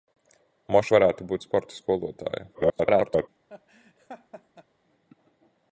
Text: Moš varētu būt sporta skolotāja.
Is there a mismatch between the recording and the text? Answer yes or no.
yes